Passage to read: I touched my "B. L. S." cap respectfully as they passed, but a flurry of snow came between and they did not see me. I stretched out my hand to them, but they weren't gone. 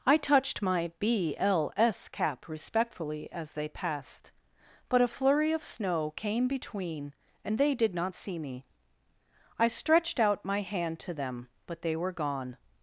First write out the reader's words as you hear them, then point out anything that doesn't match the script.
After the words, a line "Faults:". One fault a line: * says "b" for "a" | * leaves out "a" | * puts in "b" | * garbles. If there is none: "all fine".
I touched my "B. L. S." cap respectfully as they passed, but a flurry of snow came between and they did not see me. I stretched out my hand to them, but they were gone.
Faults:
* says "were" for "weren't"